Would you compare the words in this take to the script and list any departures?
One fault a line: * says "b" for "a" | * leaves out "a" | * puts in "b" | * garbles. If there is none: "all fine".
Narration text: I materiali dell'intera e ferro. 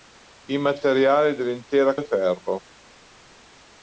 all fine